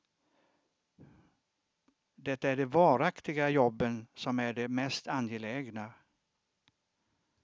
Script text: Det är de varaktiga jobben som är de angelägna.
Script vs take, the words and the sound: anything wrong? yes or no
yes